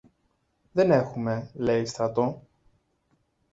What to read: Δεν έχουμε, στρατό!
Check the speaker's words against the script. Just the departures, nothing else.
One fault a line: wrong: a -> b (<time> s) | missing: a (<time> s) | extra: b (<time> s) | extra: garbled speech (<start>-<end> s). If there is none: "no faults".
extra: λέει (1.5 s)